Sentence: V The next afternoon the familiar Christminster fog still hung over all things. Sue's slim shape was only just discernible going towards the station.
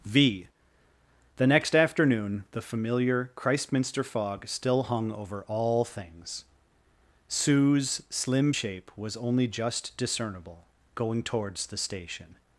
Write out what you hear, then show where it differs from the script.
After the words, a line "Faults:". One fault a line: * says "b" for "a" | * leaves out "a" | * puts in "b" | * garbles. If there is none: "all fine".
V The next afternoon the familiar Christminster fog still hung over all things. Sue's slim shape was only just discernible going towards the station.
Faults:
all fine